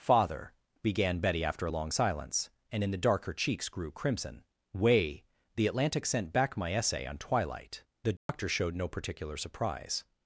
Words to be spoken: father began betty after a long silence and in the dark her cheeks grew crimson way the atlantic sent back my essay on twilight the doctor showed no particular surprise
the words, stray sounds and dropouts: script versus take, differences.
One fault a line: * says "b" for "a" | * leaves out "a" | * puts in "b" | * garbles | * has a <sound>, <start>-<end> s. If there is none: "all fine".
* has a dropout, 8.2-8.3 s